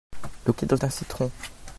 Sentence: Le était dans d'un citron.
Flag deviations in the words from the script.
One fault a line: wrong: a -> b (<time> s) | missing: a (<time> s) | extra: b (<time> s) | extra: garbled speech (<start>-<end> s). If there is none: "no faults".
no faults